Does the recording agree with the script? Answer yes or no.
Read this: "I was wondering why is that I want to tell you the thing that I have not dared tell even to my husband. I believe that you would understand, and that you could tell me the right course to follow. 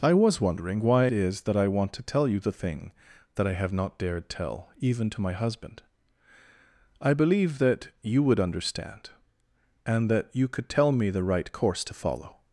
yes